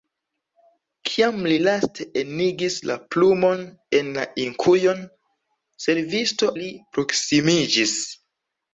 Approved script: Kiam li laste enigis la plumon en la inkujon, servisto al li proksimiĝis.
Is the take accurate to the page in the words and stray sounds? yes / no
no